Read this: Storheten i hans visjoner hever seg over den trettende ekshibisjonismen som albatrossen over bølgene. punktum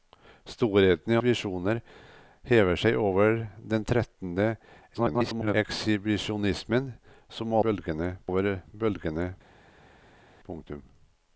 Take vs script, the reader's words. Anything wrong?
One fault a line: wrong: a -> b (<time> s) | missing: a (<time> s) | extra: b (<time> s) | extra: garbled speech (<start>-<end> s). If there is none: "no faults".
missing: hans (1.2 s)
extra: garbled speech (4.9-5.5 s)
wrong: albatrossen -> bølgene (7.7 s)